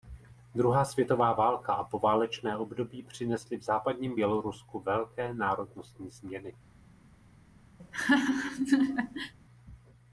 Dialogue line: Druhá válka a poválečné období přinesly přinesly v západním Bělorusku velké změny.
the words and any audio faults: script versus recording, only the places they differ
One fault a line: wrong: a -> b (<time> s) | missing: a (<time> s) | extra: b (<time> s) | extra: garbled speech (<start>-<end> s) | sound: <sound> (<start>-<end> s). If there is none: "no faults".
extra: světová (0.8 s)
missing: přinesly (3.6 s)
extra: národnostní (5.3 s)
sound: laugh (7.8-9.3 s)